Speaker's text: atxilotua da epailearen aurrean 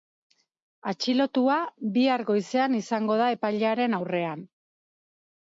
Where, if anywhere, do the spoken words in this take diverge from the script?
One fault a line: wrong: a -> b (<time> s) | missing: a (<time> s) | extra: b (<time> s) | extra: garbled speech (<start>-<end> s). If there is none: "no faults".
extra: bihar goizean izango (2.0 s)